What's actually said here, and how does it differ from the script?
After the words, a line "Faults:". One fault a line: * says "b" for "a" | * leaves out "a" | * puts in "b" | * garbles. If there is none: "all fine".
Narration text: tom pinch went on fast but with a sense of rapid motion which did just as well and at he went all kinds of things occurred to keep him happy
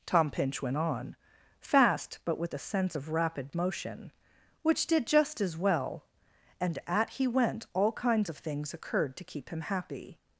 tom pinch went on fast but with a sense of rapid motion which did just as well and at he went all kinds of things occurred to keep him happy
Faults:
all fine